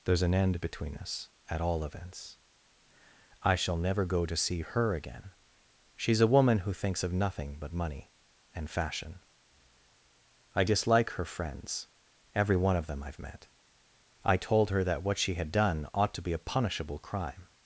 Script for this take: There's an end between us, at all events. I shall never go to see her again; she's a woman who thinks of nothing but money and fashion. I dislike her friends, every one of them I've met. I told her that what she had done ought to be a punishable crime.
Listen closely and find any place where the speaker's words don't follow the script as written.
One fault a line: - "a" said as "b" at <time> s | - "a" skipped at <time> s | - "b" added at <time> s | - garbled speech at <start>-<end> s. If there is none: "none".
none